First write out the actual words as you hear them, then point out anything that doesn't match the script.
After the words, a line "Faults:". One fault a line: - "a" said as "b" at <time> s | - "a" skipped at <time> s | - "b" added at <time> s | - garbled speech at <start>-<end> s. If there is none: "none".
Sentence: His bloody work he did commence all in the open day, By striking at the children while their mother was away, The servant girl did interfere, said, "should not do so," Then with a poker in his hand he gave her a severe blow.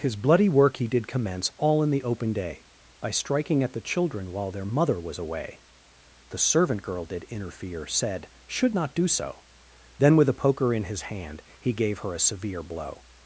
His bloody work he did commence all in the open day, By striking at the children while their mother was away, The servant girl did interfere, said, "should not do so," Then with a poker in his hand he gave her a severe blow.
Faults:
none